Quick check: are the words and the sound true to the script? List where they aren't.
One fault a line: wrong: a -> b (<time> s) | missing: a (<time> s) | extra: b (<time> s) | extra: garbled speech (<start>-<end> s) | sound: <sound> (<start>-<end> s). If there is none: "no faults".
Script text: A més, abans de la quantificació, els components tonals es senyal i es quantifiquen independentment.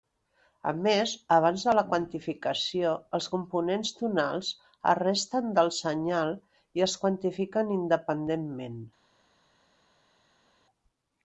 extra: resten del (5.0 s)